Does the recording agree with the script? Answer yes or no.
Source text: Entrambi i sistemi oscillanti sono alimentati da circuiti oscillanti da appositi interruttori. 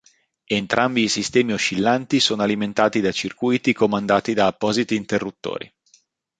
no